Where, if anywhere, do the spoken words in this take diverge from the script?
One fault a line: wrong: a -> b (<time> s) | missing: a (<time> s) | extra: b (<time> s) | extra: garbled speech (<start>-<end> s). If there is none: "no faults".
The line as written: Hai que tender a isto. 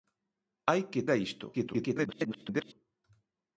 missing: tender (1.1 s)
extra: garbled speech (1.5-2.7 s)